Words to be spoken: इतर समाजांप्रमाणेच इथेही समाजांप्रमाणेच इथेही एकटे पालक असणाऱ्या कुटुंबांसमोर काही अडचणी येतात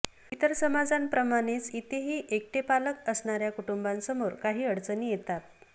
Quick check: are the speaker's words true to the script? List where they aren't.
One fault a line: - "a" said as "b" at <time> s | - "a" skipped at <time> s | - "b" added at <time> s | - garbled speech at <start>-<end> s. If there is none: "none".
- "समाजांप्रमाणेच इथेही" skipped at 2.2 s